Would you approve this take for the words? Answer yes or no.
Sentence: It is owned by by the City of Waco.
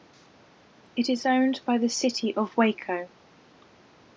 no